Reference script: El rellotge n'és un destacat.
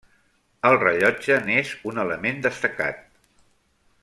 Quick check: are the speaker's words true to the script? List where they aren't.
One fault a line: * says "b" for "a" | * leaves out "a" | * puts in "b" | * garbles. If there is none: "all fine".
* puts in "element"